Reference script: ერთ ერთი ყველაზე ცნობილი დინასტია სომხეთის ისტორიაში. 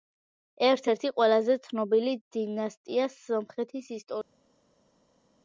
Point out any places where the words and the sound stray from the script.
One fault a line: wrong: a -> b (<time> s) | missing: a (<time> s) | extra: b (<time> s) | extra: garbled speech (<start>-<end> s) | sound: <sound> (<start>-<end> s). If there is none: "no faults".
no faults